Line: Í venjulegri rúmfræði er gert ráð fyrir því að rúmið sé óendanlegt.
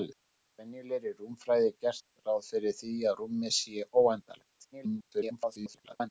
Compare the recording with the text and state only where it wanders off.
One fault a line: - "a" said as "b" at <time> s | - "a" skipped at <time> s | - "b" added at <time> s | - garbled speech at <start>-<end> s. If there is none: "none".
- garbled speech at 4.7-6.1 s